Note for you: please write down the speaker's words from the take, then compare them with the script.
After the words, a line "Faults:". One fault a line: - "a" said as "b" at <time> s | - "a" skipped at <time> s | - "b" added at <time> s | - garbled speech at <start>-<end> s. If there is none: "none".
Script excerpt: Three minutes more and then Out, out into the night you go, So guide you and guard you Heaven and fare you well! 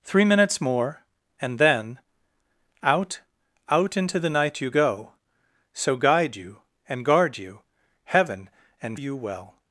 Three minutes more and then Out, out into the night you go, So guide you and guard you Heaven and you well!
Faults:
- "fare" skipped at 9.0 s